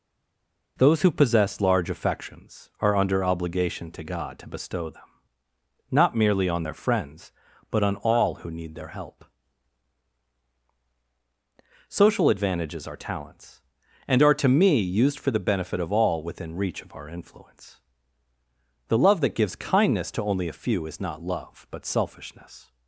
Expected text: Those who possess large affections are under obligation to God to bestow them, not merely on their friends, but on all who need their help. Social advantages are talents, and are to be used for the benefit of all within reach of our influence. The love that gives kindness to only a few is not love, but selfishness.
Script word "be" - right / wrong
wrong